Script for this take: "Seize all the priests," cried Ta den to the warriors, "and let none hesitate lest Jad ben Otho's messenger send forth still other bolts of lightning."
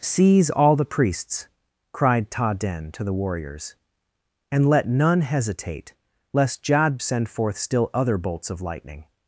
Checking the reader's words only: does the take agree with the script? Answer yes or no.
no